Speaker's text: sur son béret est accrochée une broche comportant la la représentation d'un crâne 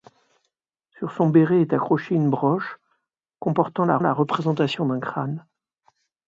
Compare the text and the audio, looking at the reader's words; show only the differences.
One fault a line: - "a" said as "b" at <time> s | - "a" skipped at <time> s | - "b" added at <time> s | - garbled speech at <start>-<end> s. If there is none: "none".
none